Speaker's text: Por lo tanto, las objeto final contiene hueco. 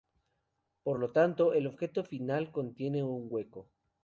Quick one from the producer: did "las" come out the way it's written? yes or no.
no